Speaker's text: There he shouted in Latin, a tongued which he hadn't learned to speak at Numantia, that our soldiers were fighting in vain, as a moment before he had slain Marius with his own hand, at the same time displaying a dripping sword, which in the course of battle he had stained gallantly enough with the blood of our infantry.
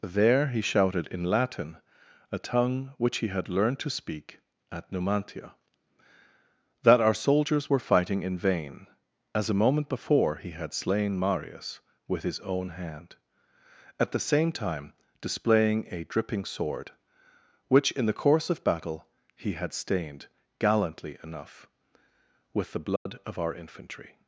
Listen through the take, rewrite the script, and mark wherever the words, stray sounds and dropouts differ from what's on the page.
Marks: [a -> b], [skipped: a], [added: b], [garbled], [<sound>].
There he shouted in Latin, a [tongued -> tongue] which he [hadn't -> had] learned to speak at Numantia, that our soldiers were fighting in vain, as a moment before he had slain Marius with his own hand, at the same time displaying a dripping sword, which in the course of battle he had stained gallantly enough with the blood [dropout] of our infantry.